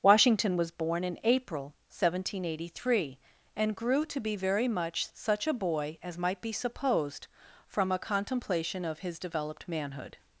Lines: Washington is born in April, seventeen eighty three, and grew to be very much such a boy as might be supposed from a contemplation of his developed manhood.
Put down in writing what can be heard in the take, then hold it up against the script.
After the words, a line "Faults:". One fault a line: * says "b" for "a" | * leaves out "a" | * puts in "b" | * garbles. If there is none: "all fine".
Washington was born in April, seventeen eighty three, and grew to be very much such a boy as might be supposed from a contemplation of his developed manhood.
Faults:
* says "was" for "is"